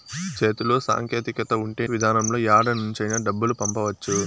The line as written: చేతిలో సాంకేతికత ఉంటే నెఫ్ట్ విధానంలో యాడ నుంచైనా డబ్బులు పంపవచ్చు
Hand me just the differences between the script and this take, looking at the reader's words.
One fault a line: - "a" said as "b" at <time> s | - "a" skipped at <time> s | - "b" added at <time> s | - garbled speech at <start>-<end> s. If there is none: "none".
- "నెఫ్ట్" skipped at 1.8 s